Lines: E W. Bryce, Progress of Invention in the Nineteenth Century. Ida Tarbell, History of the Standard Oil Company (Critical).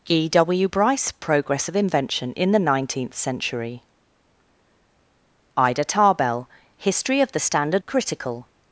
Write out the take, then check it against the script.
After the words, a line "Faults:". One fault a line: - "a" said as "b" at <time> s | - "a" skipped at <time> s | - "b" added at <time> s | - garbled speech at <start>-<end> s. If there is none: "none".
E W. Bryce, Progress of Invention in the Nineteenth Century. Ida Tarbell, History of the Standard (Critical).
Faults:
- "Oil Company" skipped at 7.8 s